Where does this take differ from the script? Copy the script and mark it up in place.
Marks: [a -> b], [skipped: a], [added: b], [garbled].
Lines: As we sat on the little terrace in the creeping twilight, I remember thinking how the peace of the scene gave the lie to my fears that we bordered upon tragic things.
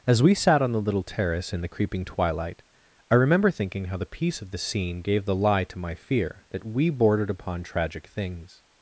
As we sat on the little terrace in the creeping twilight, I remember thinking how the peace of the scene gave the lie to my [fears -> fear] that we bordered upon tragic things.